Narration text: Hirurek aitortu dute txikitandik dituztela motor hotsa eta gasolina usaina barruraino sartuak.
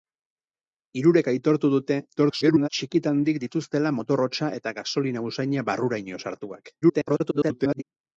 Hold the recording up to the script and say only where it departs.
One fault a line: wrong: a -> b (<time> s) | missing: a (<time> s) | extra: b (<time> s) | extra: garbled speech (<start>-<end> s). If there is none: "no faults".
extra: garbled speech (2.2-2.7 s)
extra: garbled speech (6.8-7.8 s)